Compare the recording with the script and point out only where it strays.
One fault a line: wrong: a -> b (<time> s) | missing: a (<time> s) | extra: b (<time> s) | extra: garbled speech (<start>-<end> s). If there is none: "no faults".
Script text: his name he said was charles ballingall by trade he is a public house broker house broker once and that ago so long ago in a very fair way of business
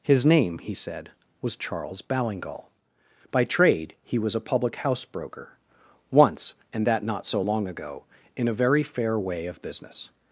wrong: is -> was (4.2 s)
missing: house broker (5.6 s)
wrong: ago -> not (7.0 s)